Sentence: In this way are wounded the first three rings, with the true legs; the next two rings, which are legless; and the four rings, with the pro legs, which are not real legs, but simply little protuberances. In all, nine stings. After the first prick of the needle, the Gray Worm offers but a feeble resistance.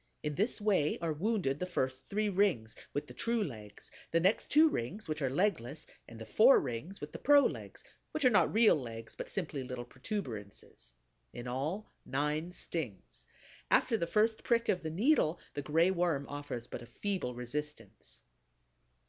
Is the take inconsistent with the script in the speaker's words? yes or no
no